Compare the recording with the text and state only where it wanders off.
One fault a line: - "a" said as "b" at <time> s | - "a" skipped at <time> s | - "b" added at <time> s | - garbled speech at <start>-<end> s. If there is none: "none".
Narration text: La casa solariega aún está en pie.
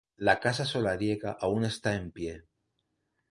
none